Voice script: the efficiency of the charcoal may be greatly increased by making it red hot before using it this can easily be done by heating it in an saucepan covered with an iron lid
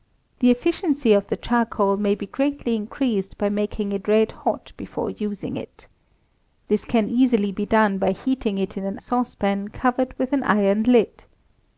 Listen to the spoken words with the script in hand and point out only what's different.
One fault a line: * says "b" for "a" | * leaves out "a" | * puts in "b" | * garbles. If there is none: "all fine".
all fine